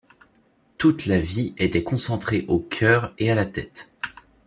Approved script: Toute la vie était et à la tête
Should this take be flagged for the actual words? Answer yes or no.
yes